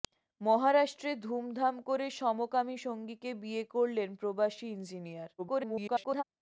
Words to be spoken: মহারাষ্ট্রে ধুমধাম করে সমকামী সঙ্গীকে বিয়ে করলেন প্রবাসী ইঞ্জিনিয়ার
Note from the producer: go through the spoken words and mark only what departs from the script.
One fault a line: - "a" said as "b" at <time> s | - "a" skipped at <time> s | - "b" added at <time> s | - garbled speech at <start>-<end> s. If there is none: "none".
- garbled speech at 5.4-6.2 s